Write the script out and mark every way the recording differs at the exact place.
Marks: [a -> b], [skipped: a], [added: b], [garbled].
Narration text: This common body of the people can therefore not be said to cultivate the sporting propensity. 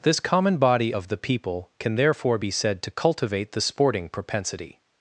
This common body of the people can therefore [skipped: not] be said to cultivate the sporting propensity.